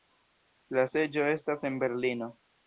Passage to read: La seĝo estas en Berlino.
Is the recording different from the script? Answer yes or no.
no